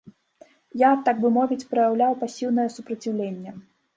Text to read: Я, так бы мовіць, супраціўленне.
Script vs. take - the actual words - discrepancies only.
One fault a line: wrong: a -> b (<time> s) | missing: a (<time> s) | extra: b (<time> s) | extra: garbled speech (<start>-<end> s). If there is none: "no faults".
extra: праяўляў пасіўнае (1.7 s)